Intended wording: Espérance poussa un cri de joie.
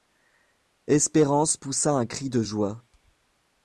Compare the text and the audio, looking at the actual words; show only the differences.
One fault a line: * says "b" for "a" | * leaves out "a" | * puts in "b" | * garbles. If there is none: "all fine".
all fine